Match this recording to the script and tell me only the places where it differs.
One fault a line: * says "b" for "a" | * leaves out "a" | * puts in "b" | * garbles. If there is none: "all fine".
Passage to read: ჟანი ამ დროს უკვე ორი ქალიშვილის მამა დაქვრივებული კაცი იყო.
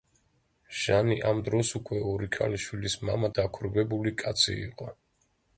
all fine